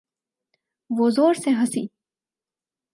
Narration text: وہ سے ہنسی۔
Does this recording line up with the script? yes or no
no